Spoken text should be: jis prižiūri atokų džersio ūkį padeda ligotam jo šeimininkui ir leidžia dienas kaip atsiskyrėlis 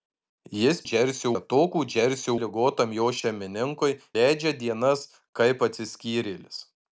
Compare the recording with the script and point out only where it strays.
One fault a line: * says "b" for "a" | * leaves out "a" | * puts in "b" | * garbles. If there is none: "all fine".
* says "džersio" for "prižiūri"
* leaves out "ūkį padeda"
* leaves out "ir"